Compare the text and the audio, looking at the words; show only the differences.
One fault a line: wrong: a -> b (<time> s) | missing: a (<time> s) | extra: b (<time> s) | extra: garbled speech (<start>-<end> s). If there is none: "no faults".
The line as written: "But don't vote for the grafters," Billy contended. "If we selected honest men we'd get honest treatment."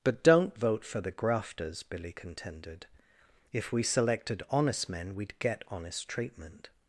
no faults